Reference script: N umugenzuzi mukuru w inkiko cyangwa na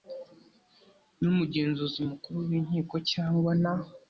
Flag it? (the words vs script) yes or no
no